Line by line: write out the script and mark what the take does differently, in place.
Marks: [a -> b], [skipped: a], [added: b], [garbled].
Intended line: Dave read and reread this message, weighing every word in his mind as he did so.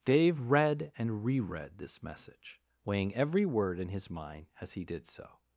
Dave read and reread this message, weighing every word in his mind as he did so.